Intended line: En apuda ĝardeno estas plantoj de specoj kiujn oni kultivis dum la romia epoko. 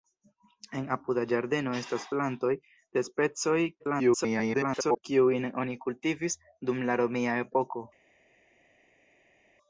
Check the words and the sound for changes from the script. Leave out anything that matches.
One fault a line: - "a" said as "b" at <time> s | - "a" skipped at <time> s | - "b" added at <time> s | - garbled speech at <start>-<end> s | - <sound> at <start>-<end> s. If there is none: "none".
- garbled speech at 3.8-5.0 s